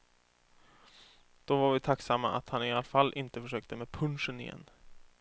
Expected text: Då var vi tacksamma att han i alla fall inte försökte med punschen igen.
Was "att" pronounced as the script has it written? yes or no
yes